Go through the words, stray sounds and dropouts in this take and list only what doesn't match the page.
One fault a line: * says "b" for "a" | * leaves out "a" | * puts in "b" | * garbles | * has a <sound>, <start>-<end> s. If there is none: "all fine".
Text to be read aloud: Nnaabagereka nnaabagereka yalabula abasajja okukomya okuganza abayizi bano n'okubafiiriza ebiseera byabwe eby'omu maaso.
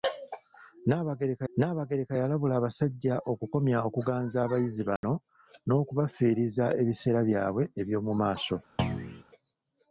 * has a dropout, 5.0-5.0 s
* has a thud, 8.8-9.2 s